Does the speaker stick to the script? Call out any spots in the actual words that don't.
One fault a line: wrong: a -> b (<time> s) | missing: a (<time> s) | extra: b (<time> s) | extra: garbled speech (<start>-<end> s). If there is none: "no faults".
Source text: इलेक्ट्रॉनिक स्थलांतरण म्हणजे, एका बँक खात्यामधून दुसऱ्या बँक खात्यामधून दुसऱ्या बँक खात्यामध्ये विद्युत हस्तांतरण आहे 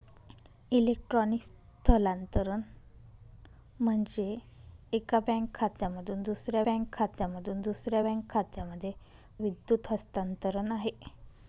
no faults